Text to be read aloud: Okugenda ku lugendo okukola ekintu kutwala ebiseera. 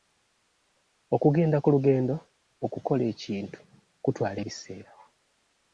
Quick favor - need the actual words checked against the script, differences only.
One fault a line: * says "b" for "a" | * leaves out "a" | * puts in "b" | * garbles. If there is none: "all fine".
all fine